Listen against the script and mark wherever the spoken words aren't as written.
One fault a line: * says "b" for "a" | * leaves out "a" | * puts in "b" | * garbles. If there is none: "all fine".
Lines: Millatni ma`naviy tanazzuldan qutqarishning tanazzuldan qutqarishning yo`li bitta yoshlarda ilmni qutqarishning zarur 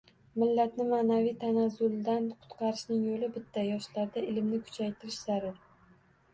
* leaves out "tanazzuldan qutqarishning"
* says "kuchaytirish" for "qutqarishning"